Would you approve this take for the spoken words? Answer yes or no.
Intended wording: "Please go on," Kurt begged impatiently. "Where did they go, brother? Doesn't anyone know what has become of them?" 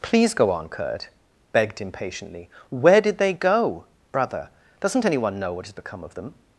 yes